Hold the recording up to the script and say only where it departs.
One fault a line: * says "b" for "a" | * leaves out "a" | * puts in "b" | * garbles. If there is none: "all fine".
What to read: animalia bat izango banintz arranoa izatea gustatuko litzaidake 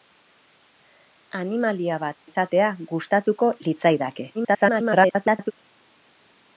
* leaves out "izango banintz arranoa"
* garbles